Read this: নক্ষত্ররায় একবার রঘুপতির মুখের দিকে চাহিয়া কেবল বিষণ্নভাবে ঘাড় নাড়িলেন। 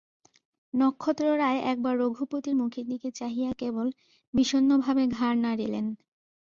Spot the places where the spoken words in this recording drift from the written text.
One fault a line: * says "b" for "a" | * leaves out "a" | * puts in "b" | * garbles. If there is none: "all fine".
all fine